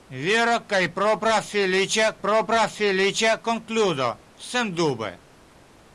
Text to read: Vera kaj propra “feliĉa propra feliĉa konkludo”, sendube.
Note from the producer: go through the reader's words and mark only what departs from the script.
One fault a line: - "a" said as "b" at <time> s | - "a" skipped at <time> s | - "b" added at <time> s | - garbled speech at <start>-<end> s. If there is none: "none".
none